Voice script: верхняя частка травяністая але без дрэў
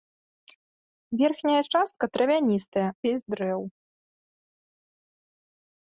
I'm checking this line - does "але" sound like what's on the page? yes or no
no